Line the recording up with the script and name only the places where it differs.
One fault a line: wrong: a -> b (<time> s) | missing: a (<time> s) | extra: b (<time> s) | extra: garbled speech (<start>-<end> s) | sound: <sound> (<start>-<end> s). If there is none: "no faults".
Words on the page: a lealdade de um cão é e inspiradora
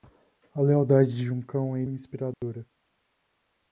sound: dropout (2.3-2.4 s)